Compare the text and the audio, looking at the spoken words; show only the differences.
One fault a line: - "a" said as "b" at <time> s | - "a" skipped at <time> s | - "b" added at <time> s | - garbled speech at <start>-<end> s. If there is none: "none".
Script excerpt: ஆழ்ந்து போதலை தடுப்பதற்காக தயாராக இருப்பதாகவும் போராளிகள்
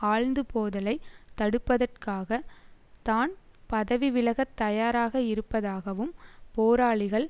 - "தான் பதவி விலகத்" added at 3.0 s